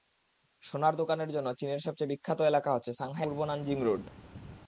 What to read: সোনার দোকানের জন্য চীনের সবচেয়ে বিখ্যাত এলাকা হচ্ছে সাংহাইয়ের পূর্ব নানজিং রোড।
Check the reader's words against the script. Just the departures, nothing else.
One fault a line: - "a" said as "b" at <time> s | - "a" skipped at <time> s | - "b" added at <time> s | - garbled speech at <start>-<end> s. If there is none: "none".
none